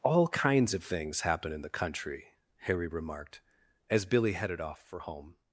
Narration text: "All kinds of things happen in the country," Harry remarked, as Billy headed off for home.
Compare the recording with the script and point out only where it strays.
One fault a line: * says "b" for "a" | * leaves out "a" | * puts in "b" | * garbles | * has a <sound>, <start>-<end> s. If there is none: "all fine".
all fine